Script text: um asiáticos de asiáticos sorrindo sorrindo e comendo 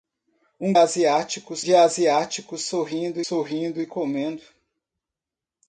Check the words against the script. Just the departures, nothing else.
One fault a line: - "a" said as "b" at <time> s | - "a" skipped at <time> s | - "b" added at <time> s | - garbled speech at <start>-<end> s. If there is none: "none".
none